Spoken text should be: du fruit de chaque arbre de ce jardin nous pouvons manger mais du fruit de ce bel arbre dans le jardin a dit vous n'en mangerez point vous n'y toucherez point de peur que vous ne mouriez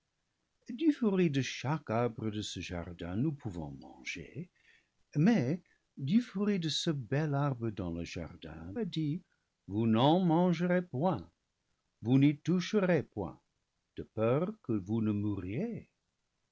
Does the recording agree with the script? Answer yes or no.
yes